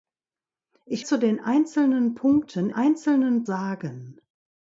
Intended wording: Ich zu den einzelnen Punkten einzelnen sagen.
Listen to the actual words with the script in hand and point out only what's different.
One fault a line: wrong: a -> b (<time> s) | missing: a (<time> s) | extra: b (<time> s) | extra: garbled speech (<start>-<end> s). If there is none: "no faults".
no faults